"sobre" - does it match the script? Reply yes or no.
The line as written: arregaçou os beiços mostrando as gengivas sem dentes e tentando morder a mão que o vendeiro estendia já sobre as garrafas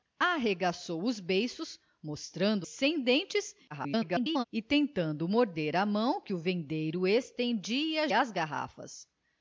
no